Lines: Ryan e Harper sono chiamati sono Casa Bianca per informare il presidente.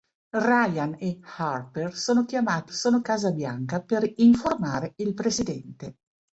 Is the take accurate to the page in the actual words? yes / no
yes